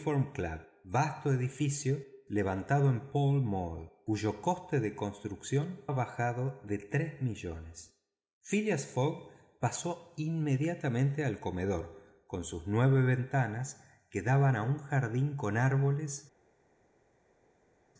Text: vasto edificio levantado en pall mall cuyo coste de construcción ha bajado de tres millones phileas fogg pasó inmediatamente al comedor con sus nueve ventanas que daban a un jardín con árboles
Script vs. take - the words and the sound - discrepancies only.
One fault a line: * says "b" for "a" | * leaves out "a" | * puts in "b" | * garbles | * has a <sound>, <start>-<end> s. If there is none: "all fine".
all fine